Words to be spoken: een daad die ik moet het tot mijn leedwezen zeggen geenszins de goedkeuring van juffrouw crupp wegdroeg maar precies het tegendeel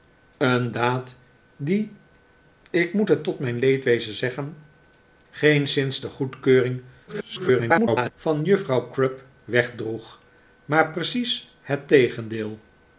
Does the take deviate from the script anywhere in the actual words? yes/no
yes